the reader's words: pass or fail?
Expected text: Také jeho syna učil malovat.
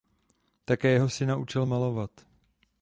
pass